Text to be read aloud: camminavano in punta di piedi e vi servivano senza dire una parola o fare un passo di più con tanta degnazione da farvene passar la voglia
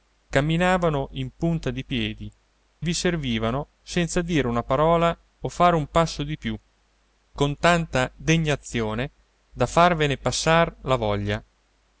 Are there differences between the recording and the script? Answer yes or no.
yes